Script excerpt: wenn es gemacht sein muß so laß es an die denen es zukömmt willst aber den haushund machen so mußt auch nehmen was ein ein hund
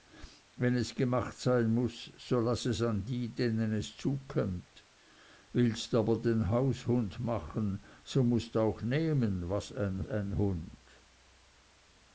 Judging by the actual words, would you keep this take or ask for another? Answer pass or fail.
pass